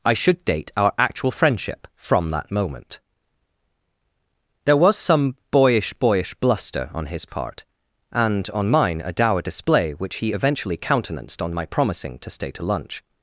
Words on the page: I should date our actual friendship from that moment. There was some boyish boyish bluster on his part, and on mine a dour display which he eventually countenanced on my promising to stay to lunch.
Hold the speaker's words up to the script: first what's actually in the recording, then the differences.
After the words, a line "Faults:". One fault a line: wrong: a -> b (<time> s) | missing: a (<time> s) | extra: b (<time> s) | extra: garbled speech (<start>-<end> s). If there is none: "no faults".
I should date our actual friendship from that moment. There was some boyish boyish bluster on his part, and on mine a dour display which he eventually countenanced on my promising to stay to lunch.
Faults:
no faults